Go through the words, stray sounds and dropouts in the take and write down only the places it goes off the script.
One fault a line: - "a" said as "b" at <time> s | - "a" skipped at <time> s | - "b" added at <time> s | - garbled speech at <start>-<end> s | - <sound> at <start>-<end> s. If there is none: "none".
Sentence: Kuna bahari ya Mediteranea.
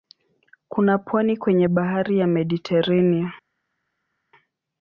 - "pwani kwenye" added at 1.0 s